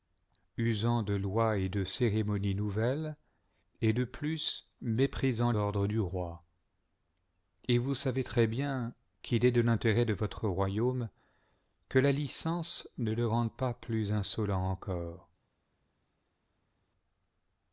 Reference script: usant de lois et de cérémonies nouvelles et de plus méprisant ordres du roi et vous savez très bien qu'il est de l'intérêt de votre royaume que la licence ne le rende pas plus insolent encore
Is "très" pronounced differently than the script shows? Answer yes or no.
no